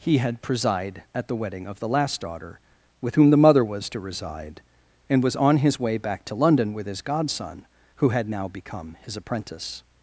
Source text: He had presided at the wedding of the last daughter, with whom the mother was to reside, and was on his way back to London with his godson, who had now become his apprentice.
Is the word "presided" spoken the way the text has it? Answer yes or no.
no